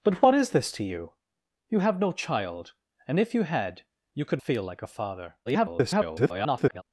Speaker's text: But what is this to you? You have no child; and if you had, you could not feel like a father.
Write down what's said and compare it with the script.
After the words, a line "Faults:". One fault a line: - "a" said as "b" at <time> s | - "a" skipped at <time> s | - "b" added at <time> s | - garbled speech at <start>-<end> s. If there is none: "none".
But what is this to you? You have no child; and if you had, you could feel like a father. [garbled]
Faults:
- "not" skipped at 4.4 s
- garbled speech at 5.5-6.8 s